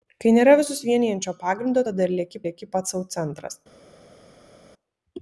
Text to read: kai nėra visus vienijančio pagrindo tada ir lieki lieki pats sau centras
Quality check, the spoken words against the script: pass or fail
pass